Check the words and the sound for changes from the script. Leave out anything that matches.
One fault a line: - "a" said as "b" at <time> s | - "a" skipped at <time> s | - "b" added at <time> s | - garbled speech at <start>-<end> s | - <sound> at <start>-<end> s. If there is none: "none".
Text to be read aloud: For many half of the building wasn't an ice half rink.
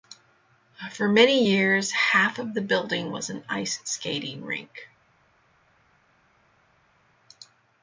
- "years" added at 1.4 s
- "wasn't" said as "was" at 3.1 s
- "half" said as "skating" at 3.8 s